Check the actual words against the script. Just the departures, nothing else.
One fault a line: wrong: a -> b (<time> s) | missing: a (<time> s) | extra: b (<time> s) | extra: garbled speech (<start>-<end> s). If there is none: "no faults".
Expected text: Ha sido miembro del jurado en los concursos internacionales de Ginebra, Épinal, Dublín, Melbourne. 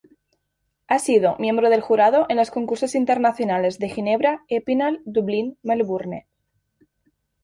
no faults